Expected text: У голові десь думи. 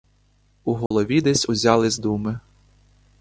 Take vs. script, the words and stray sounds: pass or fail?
fail